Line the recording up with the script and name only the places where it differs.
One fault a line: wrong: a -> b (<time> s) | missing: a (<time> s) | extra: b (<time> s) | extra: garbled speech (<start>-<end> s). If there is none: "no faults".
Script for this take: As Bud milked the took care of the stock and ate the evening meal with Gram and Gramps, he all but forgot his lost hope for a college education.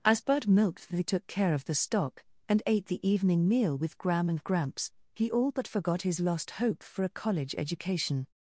no faults